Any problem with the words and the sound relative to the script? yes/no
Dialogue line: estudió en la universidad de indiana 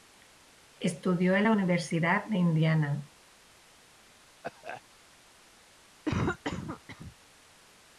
yes